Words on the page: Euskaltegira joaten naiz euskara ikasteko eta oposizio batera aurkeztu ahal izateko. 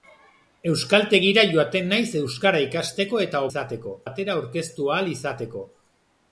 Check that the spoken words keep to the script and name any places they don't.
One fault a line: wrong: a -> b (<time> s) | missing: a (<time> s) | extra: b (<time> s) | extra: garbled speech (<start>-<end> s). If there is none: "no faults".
wrong: oposizio -> izateko (3.5 s)